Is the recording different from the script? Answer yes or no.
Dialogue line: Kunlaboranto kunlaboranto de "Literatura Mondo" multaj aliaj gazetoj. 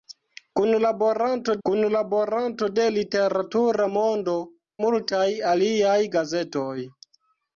no